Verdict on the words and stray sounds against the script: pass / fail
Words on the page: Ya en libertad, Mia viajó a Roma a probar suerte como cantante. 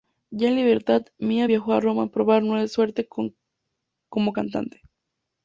pass